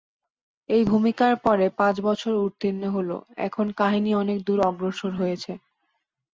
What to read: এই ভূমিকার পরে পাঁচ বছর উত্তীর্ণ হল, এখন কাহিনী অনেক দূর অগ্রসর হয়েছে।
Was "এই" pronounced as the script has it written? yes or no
yes